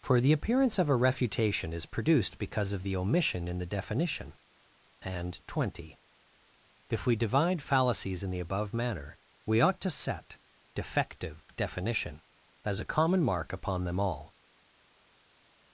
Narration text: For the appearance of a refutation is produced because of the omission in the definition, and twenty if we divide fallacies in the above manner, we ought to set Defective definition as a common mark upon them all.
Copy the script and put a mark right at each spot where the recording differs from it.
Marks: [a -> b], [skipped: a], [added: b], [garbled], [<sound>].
For the appearance of a refutation is produced because of the omission in the definition, and twenty if we divide fallacies in the above manner, we ought to set Defective definition as a common mark upon them all.